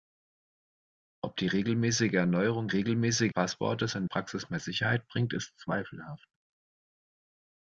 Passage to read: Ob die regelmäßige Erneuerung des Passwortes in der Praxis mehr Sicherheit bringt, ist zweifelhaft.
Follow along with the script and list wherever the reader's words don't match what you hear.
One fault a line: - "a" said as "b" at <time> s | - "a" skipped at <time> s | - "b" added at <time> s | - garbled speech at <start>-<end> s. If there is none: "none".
- "des" said as "regelmäßige" at 2.7 s
- "der" skipped at 4.1 s